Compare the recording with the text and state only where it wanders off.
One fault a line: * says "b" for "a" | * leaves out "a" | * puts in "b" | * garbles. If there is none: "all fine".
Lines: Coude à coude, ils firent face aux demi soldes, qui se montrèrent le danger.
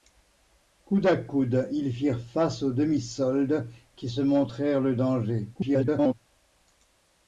* garbles